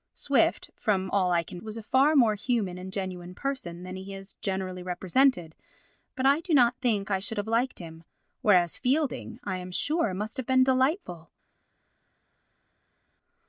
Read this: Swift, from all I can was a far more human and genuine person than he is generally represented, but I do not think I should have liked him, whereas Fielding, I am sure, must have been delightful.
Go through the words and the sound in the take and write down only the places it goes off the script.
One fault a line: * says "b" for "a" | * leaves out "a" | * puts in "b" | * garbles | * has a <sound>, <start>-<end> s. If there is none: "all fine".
all fine